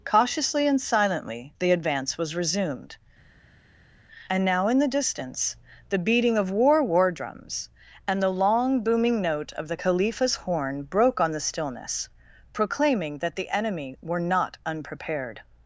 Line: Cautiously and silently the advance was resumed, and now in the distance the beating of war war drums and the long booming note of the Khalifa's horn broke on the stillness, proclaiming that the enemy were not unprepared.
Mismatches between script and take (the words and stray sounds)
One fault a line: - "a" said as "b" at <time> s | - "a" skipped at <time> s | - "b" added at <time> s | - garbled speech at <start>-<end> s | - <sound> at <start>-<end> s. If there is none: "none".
none